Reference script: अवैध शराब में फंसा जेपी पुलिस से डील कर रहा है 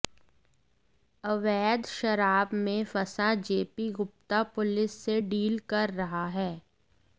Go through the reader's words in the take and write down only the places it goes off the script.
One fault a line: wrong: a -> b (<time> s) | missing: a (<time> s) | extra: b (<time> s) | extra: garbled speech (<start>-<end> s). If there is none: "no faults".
extra: गुप्ता (3.9 s)